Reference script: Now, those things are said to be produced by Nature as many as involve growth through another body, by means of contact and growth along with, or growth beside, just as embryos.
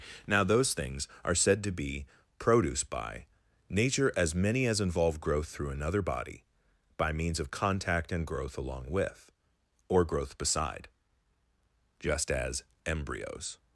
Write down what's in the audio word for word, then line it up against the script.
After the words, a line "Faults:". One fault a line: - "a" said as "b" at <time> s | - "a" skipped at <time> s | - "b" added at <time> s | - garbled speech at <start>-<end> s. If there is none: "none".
Now, those things are said to be produce by Nature as many as involve growth through another body, by means of contact and growth along with, or growth beside, just as embryos.
Faults:
- "produced" said as "produce" at 2.4 s